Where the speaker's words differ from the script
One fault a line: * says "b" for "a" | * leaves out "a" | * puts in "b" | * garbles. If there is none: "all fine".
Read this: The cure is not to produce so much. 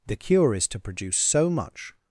* leaves out "not"